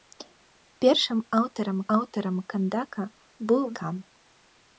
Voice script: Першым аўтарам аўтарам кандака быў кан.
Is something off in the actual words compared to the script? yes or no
no